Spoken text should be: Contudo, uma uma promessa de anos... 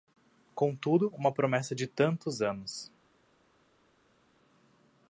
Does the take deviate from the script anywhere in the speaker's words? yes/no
yes